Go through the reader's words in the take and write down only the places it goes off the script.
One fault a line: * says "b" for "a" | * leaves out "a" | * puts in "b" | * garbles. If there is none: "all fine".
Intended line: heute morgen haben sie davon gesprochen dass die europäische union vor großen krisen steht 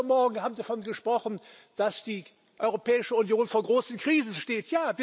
all fine